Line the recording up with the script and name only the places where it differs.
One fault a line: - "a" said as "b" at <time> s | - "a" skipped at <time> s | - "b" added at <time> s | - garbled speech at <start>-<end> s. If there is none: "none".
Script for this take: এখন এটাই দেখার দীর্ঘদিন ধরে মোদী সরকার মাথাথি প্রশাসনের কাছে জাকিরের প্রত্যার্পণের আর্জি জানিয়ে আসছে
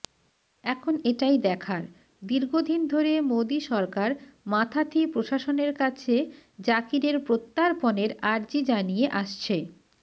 none